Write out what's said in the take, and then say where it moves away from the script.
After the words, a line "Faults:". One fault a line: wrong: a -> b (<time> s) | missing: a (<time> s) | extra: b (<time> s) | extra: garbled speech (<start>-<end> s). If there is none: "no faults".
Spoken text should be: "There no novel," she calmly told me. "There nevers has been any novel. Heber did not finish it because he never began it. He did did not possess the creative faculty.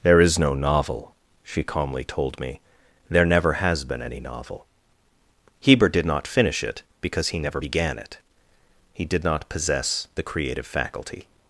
"There is no novel," she calmly told me. "There never has been any novel. Heber did not finish it because he never began it. He did not possess the creative faculty.
Faults:
extra: is (0.2 s)
wrong: nevers -> never (3.2 s)
missing: did (9.2 s)